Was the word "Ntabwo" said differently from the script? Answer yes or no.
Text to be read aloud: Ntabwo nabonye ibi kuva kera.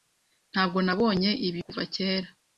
no